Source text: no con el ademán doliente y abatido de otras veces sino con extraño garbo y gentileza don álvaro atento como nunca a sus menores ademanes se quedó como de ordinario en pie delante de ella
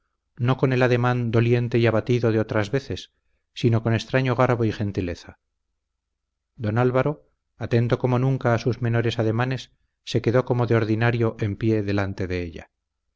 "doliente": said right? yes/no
yes